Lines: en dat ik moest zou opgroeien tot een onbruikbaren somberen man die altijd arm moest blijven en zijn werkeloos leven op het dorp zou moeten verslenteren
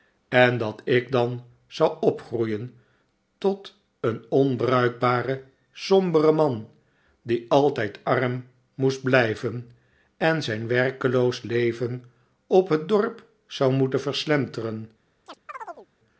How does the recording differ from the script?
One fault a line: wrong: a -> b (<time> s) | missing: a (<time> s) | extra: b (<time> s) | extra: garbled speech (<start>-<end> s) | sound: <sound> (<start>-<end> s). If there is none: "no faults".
wrong: moest -> dan (1.1 s)
sound: chirp (15.3-15.9 s)